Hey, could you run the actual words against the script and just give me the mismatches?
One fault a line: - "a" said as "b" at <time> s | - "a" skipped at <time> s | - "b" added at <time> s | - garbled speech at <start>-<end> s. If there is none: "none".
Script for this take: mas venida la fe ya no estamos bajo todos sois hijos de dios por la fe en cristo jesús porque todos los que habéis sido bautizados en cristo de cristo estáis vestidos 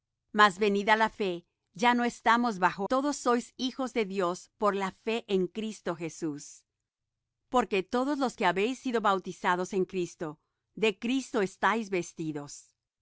none